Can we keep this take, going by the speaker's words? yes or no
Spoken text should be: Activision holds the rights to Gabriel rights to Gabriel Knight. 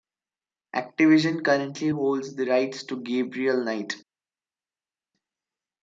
no